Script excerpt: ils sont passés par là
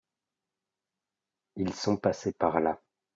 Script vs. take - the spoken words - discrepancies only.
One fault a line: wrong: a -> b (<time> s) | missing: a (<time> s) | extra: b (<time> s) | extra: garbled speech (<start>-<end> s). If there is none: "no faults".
no faults